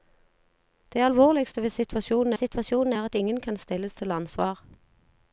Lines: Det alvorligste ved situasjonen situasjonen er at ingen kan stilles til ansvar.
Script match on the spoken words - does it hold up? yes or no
yes